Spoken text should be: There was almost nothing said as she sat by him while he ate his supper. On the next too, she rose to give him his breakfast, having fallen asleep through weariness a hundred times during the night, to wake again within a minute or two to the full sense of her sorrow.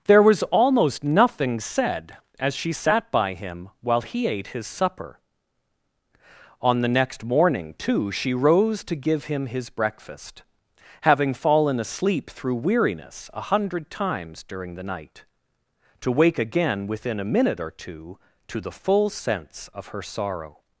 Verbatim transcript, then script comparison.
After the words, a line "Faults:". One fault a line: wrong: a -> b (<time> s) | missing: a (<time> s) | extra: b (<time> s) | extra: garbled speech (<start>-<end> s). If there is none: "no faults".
There was almost nothing said as she sat by him while he ate his supper. On the next morning, too, she rose to give him his breakfast, having fallen asleep through weariness a hundred times during the night, to wake again within a minute or two to the full sense of her sorrow.
Faults:
extra: morning (7.2 s)